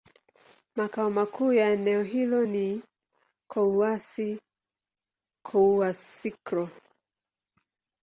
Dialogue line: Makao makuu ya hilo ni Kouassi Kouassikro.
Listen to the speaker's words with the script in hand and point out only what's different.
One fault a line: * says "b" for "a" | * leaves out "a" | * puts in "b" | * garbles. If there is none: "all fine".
* puts in "eneo"